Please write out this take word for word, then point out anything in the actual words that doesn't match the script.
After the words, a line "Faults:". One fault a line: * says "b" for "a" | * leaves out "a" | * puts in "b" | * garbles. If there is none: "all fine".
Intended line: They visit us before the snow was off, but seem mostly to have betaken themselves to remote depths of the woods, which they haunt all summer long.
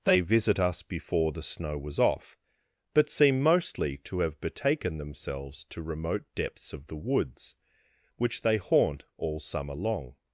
They visit us before the snow was off, but seem mostly to have betaken themselves to remote depths of the woods, which they haunt all summer long.
Faults:
all fine